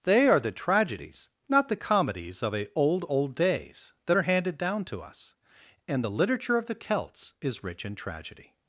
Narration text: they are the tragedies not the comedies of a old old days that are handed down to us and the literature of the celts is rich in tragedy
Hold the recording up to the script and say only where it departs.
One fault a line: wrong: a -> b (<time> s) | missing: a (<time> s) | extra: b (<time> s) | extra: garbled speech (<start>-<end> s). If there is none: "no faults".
no faults